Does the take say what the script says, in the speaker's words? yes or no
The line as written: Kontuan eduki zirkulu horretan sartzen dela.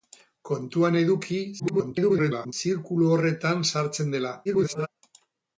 no